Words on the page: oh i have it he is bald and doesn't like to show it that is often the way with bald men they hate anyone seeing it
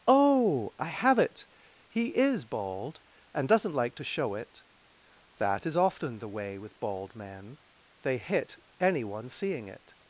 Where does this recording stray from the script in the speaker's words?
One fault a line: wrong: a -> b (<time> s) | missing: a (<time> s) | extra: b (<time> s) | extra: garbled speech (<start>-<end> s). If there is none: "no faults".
wrong: hate -> hit (8.2 s)